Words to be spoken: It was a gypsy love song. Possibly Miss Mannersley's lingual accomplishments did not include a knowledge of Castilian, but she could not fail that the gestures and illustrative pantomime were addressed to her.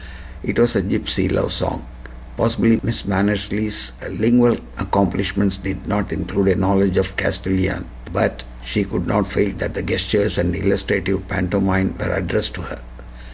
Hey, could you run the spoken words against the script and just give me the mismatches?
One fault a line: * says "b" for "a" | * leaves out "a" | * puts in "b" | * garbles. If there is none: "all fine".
all fine